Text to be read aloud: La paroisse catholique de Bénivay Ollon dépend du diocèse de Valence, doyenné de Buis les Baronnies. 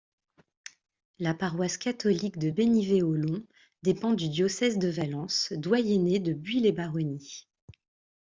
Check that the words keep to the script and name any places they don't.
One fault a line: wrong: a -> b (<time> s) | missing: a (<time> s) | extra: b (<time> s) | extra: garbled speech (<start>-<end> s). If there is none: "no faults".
no faults